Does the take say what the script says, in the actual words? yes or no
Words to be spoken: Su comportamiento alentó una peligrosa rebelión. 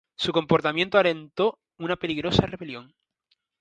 yes